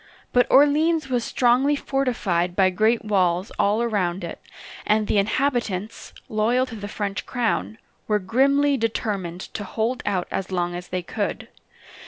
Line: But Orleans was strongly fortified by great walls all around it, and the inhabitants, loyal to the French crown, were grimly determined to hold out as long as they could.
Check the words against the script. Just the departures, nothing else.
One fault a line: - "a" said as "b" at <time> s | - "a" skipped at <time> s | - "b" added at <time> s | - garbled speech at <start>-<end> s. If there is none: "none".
none